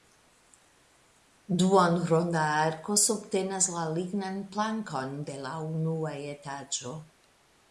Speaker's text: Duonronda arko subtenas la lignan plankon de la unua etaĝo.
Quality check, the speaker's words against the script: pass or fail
pass